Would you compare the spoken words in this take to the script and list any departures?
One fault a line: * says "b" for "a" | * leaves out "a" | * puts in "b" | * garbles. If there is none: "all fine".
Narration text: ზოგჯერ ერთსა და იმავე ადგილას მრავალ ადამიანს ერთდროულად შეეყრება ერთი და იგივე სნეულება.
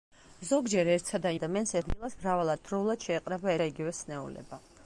* says "ადამიანს" for "იმავე"
* leaves out "ადამიანს"
* leaves out "ერთი"